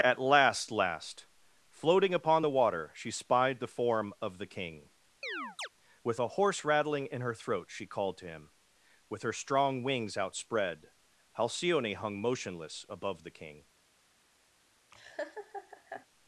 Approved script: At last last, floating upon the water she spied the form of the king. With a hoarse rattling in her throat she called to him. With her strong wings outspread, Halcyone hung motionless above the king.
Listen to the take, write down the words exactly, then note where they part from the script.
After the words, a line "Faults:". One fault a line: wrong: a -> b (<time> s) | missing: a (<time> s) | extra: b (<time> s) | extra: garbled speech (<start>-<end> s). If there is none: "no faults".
At last last, floating upon the water she spied the form of the king. With a hoarse rattling in her throat she called to him. With her strong wings outspread, Halcyone hung motionless above the king.
Faults:
no faults